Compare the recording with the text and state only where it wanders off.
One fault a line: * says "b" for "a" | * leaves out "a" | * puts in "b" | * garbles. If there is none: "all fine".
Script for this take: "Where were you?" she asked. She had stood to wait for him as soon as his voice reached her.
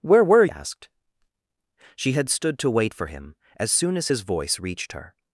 * leaves out "you she"